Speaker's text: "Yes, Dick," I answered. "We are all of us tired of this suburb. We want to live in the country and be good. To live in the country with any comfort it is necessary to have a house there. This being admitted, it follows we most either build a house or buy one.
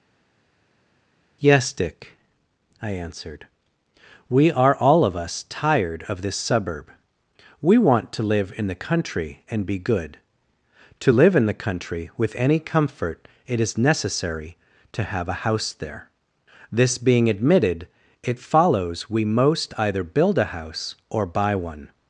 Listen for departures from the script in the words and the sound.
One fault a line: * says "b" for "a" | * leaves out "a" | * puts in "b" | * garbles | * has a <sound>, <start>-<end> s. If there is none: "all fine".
all fine